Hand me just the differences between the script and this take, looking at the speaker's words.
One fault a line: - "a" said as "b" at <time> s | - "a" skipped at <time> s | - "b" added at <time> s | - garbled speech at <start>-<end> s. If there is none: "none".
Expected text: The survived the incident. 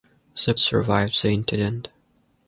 none